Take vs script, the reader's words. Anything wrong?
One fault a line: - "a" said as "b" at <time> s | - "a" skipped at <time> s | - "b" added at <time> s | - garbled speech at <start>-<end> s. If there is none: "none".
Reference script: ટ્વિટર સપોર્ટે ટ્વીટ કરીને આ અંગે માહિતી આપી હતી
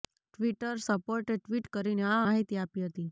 - "અંગે" skipped at 2.2 s